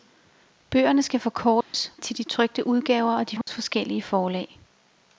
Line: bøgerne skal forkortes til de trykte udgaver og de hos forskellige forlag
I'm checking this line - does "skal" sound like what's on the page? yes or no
yes